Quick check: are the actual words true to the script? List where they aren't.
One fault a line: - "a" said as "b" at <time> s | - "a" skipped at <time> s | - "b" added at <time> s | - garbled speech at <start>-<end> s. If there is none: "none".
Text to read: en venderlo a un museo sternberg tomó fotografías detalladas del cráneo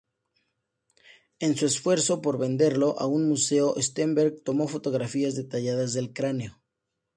- "su esfuerzo por" added at 1.6 s